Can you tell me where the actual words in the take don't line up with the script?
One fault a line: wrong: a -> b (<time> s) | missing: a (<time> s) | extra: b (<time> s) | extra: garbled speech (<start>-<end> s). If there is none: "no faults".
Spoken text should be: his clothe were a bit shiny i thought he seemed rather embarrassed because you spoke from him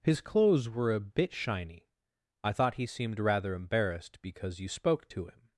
wrong: clothe -> clothes (0.2 s)
wrong: from -> to (5.1 s)